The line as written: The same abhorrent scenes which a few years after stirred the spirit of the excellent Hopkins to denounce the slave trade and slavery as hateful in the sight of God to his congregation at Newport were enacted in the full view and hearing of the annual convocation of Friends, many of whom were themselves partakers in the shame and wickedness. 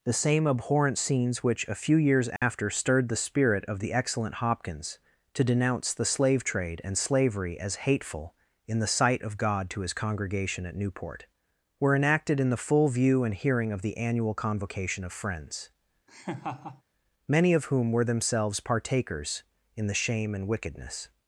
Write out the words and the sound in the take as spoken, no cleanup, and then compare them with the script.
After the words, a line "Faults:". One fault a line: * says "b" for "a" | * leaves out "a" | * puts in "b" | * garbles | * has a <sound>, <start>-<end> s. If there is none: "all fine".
The same abhorrent scenes which a few years after stirred the spirit of the excellent Hopkins to denounce the slave trade and slavery as hateful in the sight of God to his congregation at Newport were enacted in the full view and hearing of the annual convocation of Friends, many of whom were themselves partakers in the shame and wickedness.
Faults:
* has a dropout, 2.4-2.4 s
* has a laugh, 16.1-16.8 s